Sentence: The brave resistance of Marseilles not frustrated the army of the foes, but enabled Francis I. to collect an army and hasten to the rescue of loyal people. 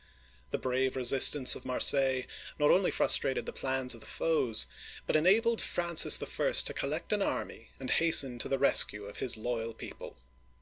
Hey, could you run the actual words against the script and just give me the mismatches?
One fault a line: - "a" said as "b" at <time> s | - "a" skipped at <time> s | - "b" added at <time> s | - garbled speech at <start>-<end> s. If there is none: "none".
- "only" added at 2.7 s
- "army" said as "plans" at 3.5 s
- "his" added at 9.2 s